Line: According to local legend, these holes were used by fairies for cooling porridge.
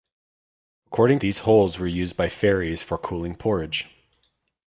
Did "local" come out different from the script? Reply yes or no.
yes